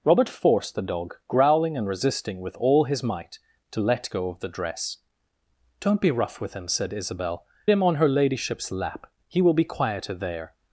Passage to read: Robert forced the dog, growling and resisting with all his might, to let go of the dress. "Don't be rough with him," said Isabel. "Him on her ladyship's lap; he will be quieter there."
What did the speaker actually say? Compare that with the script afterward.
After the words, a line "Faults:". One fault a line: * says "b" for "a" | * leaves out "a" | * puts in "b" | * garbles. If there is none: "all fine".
Robert forced the dog, growling and resisting with all his might, to let go of the dress. "Don't be rough with him," said Isabel. "Him on her ladyship's lap; he will be quieter there."
Faults:
all fine